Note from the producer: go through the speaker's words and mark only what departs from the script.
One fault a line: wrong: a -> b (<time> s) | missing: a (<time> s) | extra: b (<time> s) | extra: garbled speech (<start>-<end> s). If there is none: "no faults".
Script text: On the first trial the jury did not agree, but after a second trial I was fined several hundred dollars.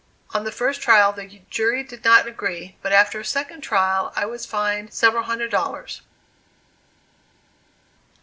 no faults